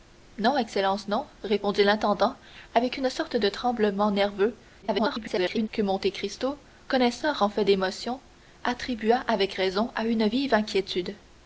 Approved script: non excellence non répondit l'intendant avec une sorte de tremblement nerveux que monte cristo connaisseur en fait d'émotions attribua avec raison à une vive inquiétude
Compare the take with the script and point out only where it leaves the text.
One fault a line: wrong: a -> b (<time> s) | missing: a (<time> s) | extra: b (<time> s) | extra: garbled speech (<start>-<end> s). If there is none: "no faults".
extra: garbled speech (4.8-5.7 s)